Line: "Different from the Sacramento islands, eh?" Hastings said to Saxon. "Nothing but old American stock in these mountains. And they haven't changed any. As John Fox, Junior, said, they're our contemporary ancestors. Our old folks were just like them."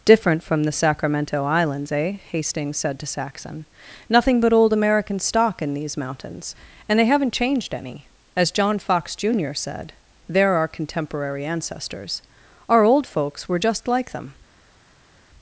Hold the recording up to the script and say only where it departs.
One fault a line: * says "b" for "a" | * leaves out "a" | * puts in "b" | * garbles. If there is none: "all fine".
all fine